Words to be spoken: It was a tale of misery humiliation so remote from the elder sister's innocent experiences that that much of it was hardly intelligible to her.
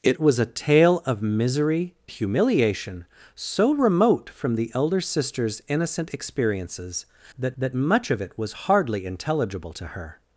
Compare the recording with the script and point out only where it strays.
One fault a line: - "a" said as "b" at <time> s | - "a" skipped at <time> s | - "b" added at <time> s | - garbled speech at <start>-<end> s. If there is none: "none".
none